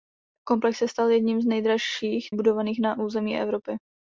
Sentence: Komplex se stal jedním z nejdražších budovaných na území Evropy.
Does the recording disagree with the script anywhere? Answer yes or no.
no